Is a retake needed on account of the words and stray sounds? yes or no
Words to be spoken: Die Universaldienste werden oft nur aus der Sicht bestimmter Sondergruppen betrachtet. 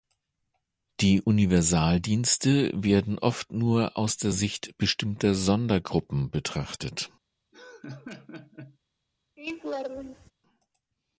yes